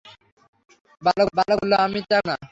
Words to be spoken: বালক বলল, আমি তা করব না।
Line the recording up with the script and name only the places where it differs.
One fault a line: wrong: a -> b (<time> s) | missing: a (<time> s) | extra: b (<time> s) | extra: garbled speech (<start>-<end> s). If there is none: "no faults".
extra: বালক (1.3 s)
missing: করব (2.2 s)